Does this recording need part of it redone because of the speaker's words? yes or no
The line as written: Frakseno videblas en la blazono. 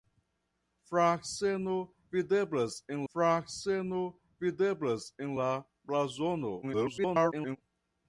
yes